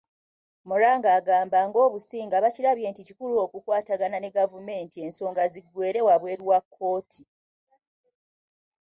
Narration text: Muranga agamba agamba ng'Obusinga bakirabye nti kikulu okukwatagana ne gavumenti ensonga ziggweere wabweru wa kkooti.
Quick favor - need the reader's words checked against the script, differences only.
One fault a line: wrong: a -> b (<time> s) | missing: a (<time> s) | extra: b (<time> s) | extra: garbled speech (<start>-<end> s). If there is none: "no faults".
missing: agamba (1.6 s)